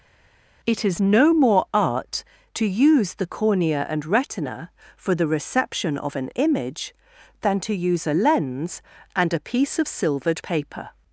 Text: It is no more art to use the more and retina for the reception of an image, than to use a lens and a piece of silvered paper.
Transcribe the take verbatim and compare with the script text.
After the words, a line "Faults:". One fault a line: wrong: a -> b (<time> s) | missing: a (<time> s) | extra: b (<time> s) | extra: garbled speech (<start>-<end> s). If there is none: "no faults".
It is no more art to use the cornea and retina for the reception of an image, than to use a lens and a piece of silvered paper.
Faults:
wrong: more -> cornea (3.3 s)